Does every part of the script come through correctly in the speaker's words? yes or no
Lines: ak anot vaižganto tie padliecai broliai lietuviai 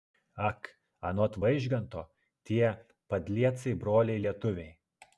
yes